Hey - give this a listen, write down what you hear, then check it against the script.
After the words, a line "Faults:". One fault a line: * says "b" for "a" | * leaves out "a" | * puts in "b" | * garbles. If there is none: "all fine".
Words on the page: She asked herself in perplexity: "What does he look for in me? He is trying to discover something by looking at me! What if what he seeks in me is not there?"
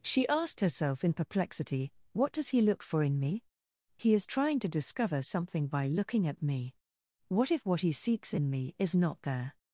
She asked herself in perplexity: "What does he look for in me? He is trying to discover something by looking at me! What if what he seeks in me is not there?"
Faults:
all fine